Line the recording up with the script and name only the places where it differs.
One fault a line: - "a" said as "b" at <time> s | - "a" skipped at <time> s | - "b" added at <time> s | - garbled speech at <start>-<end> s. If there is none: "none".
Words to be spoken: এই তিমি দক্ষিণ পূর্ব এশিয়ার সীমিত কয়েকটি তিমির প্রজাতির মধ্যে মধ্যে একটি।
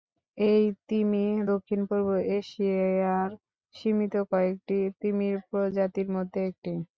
- "মধ্যে" skipped at 6.4 s